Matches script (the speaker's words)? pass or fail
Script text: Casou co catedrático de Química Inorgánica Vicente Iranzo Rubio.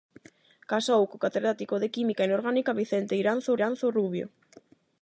fail